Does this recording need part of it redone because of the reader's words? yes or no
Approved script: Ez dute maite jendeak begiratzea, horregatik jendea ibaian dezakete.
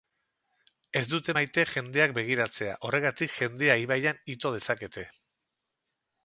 yes